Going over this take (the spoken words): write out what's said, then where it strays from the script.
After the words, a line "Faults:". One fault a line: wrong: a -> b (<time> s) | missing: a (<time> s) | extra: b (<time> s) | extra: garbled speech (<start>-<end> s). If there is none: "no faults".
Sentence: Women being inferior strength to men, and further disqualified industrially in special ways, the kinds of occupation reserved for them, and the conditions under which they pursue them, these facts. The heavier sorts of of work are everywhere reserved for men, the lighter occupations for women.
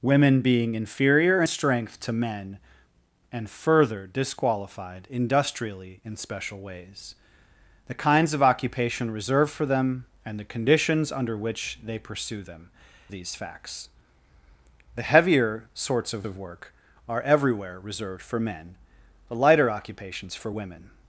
Women being inferior strength to men, and further disqualified industrially in special ways, the kinds of occupation reserved for them, and the conditions under which they pursue them, these facts. The heavier sorts of of work are everywhere reserved for men, the lighter occupations for women.
Faults:
no faults